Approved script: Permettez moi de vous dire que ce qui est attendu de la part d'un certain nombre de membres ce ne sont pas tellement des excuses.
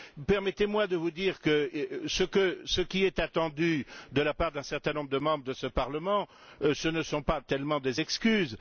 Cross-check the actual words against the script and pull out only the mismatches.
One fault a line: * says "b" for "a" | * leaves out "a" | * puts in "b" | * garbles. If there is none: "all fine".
* puts in "de ce Parlement"